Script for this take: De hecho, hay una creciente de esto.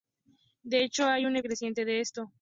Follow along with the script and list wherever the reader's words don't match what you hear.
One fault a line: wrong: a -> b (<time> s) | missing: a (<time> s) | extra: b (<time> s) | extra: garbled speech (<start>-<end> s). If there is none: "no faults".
no faults